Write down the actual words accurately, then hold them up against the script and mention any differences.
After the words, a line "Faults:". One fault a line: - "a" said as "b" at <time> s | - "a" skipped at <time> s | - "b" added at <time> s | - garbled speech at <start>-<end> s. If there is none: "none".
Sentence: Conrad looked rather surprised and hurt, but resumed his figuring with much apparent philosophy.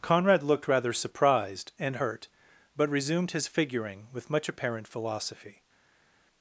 Conrad looked rather surprised and hurt, but resumed his figuring with much apparent philosophy.
Faults:
none